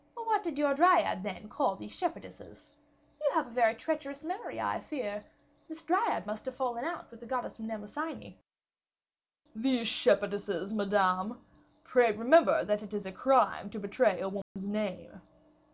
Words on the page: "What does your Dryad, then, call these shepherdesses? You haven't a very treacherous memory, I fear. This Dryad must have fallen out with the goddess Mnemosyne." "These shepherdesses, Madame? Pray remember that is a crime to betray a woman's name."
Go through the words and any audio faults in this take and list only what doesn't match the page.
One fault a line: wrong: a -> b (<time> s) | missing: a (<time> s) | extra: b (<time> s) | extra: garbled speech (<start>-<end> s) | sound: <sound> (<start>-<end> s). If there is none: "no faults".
wrong: does -> did (0.4 s)
wrong: haven't -> have (3.3 s)
extra: it (12.8 s)
sound: dropout (14.4-14.6 s)